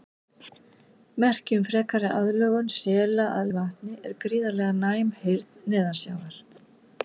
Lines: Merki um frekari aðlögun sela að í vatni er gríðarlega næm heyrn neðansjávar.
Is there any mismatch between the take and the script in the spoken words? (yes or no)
no